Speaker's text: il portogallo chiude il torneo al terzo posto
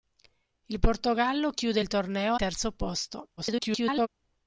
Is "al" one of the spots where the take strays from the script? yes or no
yes